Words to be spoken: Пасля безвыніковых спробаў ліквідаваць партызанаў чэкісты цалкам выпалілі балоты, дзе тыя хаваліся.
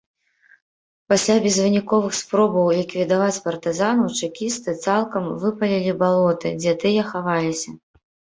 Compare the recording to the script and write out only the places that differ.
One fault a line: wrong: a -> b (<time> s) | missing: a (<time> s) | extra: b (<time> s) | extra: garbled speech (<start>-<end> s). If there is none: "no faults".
no faults